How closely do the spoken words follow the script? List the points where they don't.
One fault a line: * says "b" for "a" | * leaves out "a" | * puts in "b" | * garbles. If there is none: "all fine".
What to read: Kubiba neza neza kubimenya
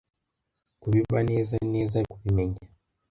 all fine